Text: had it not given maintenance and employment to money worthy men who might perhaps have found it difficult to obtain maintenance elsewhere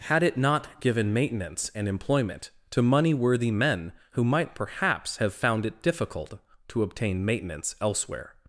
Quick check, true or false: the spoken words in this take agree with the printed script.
true